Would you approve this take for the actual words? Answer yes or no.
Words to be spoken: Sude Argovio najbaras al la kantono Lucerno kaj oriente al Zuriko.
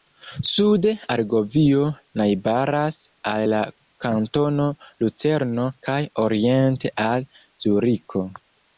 yes